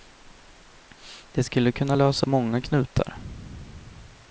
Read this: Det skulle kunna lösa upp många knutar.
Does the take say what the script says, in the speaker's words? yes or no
no